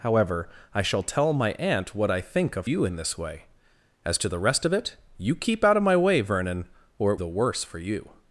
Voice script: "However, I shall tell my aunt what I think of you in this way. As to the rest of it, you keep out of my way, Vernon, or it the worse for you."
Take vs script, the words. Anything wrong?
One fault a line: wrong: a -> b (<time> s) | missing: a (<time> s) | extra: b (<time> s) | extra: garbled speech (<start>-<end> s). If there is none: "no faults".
no faults